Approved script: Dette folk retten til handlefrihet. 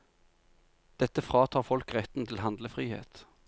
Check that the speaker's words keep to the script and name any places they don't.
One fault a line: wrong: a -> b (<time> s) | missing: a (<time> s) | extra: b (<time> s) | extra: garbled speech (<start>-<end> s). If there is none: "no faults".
extra: fratar (1.2 s)